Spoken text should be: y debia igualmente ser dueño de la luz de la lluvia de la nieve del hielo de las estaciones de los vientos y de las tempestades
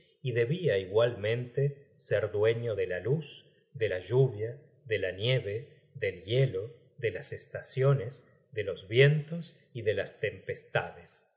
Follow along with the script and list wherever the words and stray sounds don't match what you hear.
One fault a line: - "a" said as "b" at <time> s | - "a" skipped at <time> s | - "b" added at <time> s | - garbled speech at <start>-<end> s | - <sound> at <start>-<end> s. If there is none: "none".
none